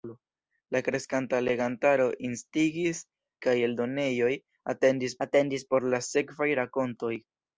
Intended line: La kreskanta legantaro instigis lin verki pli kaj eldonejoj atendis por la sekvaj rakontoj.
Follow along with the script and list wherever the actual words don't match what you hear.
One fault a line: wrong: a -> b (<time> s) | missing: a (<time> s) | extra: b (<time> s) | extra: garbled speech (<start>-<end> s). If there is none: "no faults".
missing: lin verki pli (3.0 s)
extra: atendis (5.3 s)